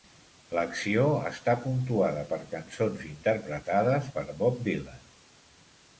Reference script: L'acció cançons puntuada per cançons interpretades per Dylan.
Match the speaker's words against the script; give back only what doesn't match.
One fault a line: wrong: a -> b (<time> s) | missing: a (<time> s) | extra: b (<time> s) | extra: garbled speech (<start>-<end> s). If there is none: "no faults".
wrong: cançons -> està (1.3 s)
extra: Bob (4.4 s)